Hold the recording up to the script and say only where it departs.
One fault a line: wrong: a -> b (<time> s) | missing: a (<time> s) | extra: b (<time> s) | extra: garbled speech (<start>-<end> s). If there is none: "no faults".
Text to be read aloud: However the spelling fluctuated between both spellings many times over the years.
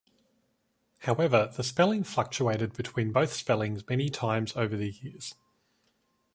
no faults